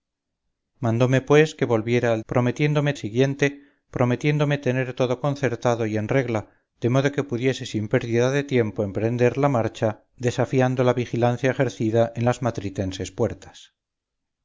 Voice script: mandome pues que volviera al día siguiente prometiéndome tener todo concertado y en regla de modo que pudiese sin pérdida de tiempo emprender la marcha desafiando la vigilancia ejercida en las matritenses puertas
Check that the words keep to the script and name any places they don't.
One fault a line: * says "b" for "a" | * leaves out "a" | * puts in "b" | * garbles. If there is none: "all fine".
* says "prometiéndome" for "día"